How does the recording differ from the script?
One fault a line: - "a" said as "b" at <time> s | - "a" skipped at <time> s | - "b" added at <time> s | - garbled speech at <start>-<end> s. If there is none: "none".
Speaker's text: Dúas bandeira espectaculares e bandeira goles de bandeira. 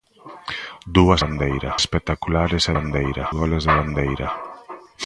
none